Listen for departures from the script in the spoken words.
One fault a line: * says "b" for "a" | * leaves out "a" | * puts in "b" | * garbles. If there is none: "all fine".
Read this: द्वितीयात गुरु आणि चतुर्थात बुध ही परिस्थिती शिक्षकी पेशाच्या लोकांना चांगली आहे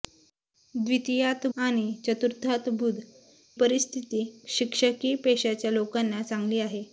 * leaves out "गुरु"
* leaves out "ही"